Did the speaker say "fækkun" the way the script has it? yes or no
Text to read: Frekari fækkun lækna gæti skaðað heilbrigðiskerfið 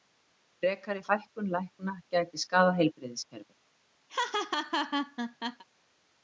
yes